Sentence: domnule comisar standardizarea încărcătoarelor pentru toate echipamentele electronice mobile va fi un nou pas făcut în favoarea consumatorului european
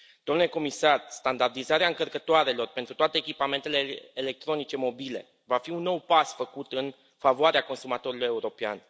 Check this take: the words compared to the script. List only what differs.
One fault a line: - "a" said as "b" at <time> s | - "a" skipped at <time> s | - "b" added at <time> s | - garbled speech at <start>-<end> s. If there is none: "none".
none